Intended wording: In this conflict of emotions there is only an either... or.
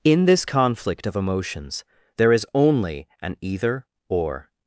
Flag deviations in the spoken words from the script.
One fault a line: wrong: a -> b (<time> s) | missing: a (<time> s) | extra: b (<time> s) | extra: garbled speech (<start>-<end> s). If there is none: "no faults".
no faults